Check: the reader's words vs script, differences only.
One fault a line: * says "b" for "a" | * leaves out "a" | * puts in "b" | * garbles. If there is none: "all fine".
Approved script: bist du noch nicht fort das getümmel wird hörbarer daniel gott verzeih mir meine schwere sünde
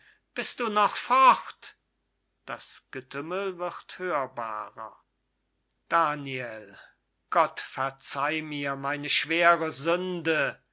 * leaves out "nicht"